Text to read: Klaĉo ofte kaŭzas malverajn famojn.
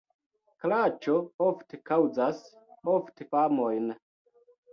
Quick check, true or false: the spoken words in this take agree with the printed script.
false